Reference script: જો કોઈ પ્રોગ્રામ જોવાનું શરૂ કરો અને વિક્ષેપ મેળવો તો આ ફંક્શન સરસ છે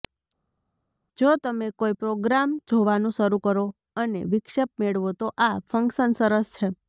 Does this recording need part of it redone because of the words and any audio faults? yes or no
yes